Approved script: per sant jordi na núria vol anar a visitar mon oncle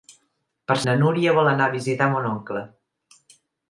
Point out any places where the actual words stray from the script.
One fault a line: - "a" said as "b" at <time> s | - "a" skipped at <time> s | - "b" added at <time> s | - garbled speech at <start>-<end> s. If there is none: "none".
- "sant jordi" skipped at 0.8 s